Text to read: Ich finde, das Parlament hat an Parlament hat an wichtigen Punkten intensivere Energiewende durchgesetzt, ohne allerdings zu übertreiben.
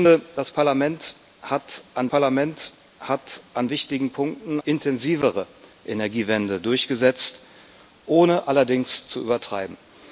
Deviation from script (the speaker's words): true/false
false